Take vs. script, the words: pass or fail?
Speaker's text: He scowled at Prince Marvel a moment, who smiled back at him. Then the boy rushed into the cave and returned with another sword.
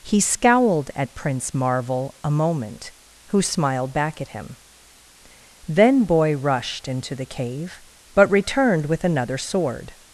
fail